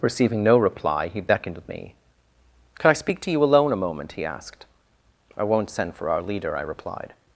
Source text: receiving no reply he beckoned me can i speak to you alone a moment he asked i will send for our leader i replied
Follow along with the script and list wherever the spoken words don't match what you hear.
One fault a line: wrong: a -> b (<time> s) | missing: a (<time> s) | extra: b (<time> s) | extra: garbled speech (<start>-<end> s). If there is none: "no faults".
wrong: will -> won't (5.4 s)